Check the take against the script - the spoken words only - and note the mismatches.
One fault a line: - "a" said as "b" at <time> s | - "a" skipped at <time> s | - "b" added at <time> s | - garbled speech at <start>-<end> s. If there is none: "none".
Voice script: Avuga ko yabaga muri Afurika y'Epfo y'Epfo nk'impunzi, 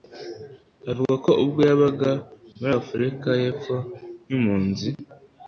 - "ubwo" added at 1.4 s
- "y'Epfo" skipped at 3.8 s